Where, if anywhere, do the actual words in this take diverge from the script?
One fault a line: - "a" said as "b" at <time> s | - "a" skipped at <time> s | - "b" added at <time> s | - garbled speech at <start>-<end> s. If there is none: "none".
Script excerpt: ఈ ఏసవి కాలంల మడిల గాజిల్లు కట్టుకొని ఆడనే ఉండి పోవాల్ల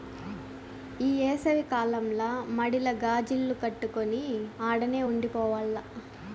none